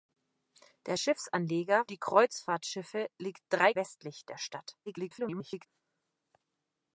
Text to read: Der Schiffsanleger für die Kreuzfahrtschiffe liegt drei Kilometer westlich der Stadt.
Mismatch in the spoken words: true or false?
true